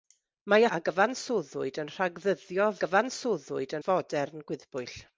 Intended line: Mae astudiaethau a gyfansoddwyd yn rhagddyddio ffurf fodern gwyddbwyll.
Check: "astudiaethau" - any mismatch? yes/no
yes